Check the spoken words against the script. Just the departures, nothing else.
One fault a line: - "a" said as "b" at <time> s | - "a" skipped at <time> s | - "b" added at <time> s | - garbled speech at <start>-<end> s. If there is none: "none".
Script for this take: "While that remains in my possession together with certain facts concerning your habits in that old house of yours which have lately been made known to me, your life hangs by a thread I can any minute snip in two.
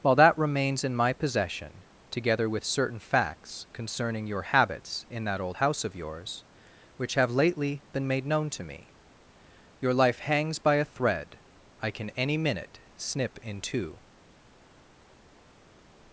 none